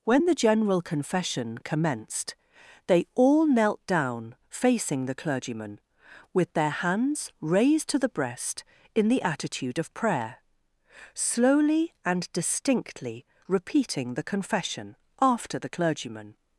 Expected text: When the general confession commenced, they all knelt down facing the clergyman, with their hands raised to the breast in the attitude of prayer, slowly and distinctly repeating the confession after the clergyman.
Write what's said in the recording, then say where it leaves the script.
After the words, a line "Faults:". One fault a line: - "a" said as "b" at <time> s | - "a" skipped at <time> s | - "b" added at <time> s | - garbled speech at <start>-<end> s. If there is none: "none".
When the general confession commenced, they all knelt down facing the clergyman, with their hands raised to the breast in the attitude of prayer, slowly and distinctly repeating the confession after the clergyman.
Faults:
none